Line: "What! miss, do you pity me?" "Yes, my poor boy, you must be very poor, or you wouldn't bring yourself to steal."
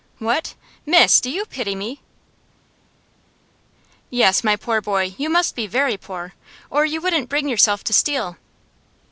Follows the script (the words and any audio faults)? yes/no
yes